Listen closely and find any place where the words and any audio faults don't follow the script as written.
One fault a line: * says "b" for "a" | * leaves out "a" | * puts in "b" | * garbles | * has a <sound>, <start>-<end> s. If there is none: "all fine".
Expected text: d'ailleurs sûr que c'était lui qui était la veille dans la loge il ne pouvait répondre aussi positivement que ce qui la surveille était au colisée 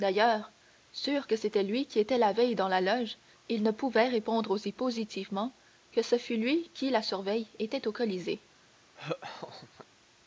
* puts in "fût lui"
* has a laugh, 8.9-9.9 s